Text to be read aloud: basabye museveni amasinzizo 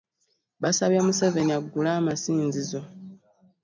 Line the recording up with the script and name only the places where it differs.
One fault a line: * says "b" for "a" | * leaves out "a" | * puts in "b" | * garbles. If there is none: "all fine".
* puts in "aggule"